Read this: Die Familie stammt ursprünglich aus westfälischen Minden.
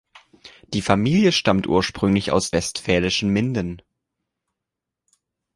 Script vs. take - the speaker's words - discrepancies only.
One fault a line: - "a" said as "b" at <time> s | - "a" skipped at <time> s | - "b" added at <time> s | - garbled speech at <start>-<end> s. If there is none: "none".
none